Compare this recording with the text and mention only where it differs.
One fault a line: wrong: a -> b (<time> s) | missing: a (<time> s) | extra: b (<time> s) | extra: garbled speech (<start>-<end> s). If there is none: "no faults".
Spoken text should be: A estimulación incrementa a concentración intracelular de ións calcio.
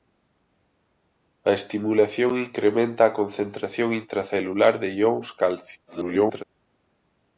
extra: garbled speech (5.9-6.4 s)